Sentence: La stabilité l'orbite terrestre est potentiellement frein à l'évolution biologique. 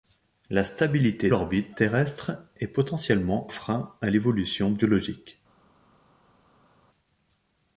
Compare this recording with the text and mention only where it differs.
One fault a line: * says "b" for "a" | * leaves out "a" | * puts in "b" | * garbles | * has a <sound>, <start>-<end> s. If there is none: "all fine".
all fine